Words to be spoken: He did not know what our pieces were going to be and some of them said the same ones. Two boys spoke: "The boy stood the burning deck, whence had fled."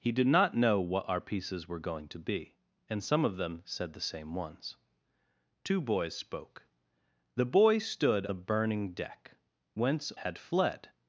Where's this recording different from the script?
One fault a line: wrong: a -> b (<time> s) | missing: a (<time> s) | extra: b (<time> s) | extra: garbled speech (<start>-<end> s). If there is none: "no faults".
no faults